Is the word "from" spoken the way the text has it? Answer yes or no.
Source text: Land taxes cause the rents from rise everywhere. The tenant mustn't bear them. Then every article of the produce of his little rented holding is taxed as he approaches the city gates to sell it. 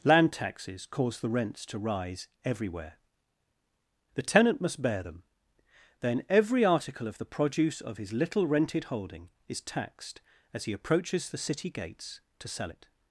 no